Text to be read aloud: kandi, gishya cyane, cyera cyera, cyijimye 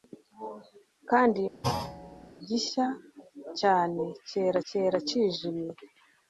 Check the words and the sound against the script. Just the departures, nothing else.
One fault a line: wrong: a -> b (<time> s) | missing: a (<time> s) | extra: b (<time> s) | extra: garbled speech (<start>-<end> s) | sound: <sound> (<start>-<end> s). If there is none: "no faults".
sound: thud (1.6-2.3 s)